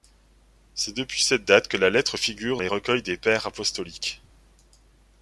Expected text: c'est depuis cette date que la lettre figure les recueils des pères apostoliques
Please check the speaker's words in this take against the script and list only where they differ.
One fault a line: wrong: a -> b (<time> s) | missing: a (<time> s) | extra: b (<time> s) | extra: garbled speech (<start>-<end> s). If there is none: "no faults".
no faults